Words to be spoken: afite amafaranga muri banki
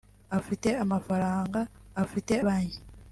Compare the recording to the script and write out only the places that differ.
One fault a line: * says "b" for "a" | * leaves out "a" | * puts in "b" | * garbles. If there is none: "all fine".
* says "afite" for "muri"